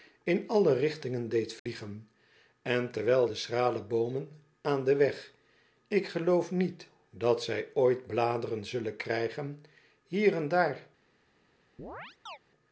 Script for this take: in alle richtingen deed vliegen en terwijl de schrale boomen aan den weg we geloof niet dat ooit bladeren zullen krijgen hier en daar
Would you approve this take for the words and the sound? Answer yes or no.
no